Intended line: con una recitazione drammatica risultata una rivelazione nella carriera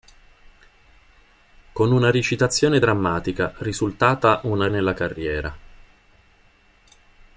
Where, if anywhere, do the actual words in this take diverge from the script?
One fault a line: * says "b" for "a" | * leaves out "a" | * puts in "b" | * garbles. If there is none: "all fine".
* leaves out "rivelazione"